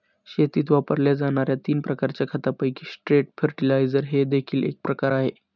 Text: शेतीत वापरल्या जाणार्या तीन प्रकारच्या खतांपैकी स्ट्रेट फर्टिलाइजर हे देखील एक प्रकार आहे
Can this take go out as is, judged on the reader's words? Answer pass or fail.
pass